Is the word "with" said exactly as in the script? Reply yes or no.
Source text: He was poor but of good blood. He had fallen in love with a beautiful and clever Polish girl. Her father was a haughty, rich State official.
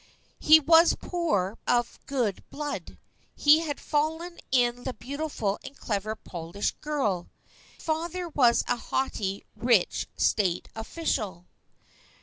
no